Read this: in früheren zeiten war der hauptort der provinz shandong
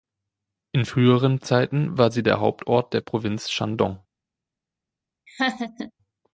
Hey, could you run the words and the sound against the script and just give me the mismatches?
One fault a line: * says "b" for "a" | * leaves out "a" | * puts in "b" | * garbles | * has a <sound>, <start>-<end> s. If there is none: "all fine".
* puts in "sie"
* has a laugh, 5.3-5.9 s